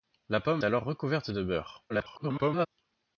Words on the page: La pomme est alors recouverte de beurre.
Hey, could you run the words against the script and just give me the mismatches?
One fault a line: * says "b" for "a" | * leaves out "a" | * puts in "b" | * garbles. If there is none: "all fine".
* leaves out "est"
* garbles